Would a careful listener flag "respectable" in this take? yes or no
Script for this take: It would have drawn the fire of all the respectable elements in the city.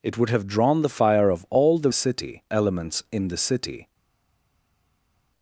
yes